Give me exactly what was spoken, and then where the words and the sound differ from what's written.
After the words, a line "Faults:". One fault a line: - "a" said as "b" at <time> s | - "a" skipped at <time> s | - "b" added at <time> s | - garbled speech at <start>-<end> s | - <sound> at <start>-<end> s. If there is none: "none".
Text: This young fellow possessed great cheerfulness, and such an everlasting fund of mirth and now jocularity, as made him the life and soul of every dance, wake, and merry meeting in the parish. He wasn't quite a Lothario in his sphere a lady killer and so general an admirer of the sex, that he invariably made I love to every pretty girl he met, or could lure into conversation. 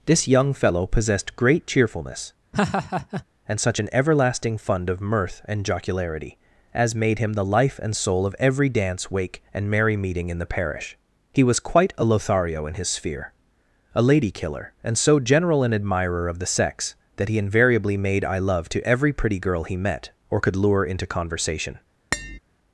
This young fellow possessed great cheerfulness, and such an everlasting fund of mirth and jocularity, as made him the life and soul of every dance, wake, and merry meeting in the parish. He was quite a Lothario in his sphere a lady killer and so general an admirer of the sex, that he invariably made I love to every pretty girl he met, or could lure into conversation.
Faults:
- laugh at 2.5-3.2 s
- "now" skipped at 5.6 s
- "wasn't" said as "was" at 11.4 s
- tap at 22.1-22.4 s